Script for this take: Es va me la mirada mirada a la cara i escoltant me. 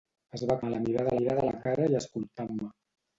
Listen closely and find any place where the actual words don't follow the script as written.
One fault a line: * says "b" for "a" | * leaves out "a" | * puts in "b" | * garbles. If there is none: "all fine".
all fine